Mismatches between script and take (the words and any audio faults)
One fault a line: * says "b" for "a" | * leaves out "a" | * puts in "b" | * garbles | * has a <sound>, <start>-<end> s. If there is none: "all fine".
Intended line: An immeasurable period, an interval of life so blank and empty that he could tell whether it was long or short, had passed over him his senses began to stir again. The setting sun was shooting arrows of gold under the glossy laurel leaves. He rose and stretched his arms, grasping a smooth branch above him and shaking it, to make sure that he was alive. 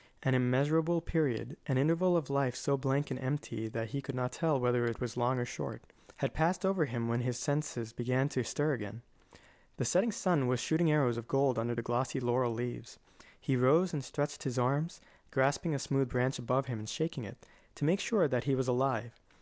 * puts in "not"
* puts in "when"